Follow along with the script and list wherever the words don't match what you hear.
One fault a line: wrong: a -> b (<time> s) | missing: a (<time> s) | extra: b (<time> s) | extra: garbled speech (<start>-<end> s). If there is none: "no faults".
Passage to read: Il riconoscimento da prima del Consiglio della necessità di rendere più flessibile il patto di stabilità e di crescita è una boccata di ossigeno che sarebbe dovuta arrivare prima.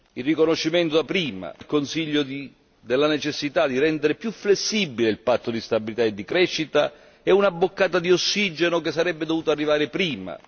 no faults